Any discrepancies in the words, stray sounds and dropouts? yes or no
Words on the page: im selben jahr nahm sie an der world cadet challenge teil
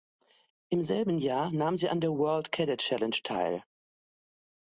no